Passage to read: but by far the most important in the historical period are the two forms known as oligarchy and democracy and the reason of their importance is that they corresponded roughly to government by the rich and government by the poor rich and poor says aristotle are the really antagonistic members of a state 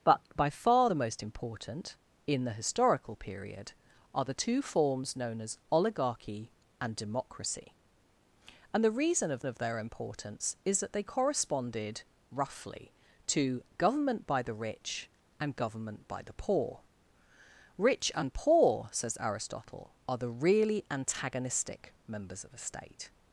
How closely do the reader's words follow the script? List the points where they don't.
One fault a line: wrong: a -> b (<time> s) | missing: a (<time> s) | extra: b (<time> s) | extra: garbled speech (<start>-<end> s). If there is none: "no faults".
extra: of (9.5 s)